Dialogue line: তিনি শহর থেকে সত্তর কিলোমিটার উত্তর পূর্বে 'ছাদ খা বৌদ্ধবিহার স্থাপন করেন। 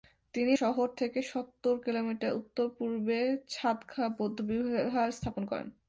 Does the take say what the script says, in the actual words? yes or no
yes